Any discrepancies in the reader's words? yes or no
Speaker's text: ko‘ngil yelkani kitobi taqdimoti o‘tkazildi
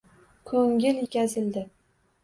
yes